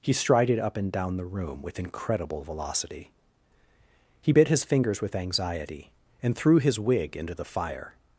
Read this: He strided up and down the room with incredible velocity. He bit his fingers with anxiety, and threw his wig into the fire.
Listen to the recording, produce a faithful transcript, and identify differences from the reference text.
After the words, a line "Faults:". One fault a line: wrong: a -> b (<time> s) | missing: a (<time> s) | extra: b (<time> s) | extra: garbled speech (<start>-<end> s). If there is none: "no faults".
He strided up and down the room with incredible velocity. He bit his fingers with anxiety, and threw his wig into the fire.
Faults:
no faults